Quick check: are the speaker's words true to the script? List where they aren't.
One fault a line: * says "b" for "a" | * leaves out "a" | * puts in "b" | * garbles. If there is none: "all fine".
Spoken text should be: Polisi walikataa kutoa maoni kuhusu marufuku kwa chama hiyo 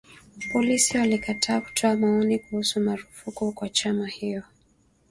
all fine